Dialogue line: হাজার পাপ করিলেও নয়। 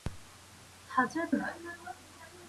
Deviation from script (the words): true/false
true